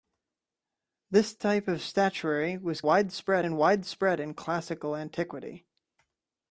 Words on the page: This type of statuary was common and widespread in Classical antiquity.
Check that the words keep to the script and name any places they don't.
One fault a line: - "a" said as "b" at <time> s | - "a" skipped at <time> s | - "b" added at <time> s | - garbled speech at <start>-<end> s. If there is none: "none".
- "common" said as "widespread" at 2.8 s